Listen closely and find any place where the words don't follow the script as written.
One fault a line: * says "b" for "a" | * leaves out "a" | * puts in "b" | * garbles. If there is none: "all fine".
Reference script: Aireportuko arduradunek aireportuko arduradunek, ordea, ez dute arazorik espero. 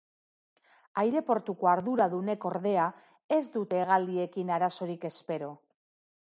* leaves out "aireportuko arduradunek"
* puts in "hegaldiekin"